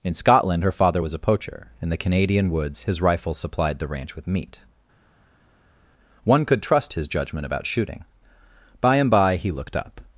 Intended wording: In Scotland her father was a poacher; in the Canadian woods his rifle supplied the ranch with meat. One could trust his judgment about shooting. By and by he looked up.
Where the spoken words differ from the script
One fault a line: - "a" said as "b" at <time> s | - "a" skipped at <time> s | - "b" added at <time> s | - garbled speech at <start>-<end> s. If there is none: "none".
none